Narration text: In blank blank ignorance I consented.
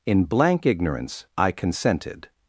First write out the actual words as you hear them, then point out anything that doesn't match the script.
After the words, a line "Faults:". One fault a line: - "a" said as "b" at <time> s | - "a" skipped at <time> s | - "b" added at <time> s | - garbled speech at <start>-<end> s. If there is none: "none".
In blank ignorance I consented.
Faults:
- "blank" skipped at 0.7 s